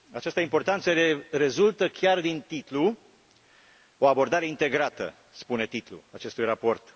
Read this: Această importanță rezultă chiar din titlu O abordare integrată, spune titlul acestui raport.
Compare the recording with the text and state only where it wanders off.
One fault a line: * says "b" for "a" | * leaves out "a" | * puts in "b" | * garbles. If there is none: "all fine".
all fine